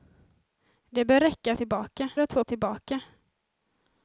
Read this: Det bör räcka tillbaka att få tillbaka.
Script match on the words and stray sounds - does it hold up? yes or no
yes